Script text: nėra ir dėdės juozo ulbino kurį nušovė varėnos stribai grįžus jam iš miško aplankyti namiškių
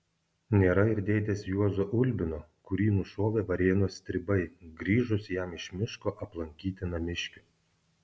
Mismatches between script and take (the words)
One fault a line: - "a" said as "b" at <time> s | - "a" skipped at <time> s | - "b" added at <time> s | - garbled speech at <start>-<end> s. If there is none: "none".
none